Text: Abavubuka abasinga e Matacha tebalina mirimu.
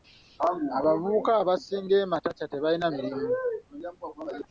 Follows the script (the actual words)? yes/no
yes